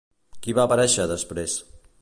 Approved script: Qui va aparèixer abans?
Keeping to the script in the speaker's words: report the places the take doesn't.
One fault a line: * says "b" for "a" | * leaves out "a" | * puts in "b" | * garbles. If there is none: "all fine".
* says "després" for "abans"